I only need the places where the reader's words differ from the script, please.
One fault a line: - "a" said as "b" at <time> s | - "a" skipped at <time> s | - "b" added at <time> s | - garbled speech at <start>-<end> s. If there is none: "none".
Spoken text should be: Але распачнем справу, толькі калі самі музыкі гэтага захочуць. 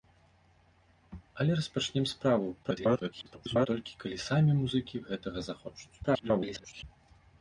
- garbled speech at 2.6-3.7 s
- garbled speech at 6.0-6.8 s